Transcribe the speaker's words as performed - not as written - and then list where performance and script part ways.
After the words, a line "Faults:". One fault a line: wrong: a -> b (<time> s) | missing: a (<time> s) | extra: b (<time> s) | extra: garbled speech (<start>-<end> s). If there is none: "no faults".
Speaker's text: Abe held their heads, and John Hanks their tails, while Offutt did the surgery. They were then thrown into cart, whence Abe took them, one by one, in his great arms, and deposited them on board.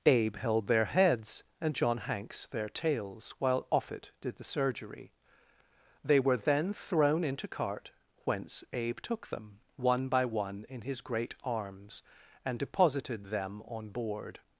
Abe held their heads, and John Hanks their tails, while Offutt did the surgery. They were then thrown into cart, whence Abe took them, one by one, in his great arms, and deposited them on board.
Faults:
no faults